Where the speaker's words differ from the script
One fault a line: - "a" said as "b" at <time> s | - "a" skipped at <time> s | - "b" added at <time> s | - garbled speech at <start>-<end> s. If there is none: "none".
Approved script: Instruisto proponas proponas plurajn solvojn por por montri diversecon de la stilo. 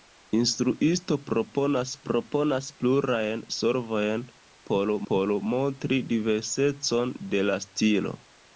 none